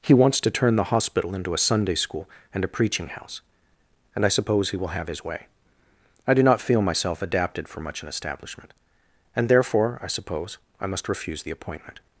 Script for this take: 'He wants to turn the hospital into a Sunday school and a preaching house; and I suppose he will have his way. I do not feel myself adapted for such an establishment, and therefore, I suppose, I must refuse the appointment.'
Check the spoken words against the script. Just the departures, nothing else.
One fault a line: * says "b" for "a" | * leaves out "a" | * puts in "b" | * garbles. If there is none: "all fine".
* says "much" for "such"